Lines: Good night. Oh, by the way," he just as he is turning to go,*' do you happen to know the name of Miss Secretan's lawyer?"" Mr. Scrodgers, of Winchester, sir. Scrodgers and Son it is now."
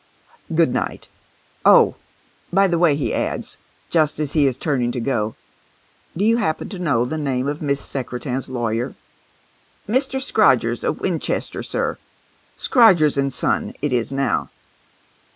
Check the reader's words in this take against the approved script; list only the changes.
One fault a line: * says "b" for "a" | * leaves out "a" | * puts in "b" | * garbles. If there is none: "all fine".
* puts in "adds"